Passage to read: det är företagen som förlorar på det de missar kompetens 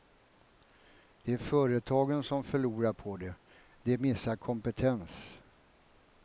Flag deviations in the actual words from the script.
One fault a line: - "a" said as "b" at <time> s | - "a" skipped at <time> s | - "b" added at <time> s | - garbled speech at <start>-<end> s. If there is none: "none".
none